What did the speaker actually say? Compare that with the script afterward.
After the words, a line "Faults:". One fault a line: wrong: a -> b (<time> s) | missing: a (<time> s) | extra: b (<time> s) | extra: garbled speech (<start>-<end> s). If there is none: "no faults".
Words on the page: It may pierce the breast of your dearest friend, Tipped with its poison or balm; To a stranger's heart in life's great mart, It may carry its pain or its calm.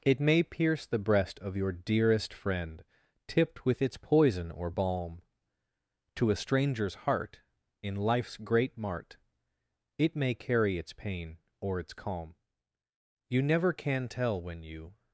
It may pierce the breast of your dearest friend, Tipped with its poison or balm; To a stranger's heart in life's great mart, It may carry its pain or its calm. You never can tell when you
Faults:
extra: You never can tell when you (13.3 s)